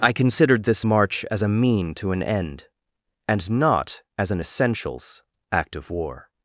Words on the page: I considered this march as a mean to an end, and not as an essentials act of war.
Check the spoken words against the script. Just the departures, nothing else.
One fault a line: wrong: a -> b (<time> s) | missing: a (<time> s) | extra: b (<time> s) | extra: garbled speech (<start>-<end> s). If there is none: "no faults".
no faults